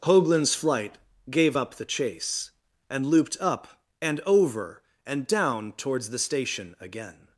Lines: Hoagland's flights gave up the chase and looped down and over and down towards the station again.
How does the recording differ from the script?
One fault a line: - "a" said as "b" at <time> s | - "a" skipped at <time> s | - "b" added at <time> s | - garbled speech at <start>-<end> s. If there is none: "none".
- "flights" said as "flight" at 0.5 s
- "down" said as "up" at 3.4 s